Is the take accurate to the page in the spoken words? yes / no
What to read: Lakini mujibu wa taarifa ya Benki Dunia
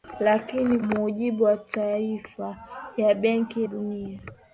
yes